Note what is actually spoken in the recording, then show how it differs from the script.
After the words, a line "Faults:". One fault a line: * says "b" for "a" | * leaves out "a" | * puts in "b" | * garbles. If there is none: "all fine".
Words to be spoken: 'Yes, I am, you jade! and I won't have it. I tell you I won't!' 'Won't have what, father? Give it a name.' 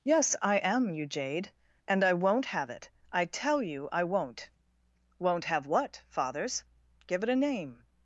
'Yes, I am, you jade! and I won't have it. I tell you I won't!' 'Won't have what, fathers? Give it a name.'
Faults:
* says "fathers" for "father"